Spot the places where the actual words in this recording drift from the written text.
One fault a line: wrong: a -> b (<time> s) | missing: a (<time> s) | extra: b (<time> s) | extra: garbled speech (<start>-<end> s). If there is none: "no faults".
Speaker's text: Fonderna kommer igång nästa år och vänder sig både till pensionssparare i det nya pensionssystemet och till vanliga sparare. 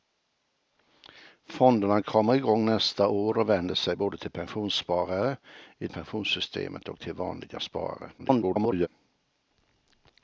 missing: det nya (5.9 s)
extra: garbled speech (8.2-8.9 s)